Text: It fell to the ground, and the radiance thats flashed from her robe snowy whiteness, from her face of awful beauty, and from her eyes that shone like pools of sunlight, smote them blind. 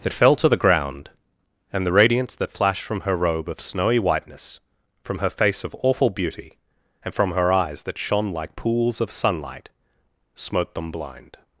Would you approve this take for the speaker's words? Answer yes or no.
no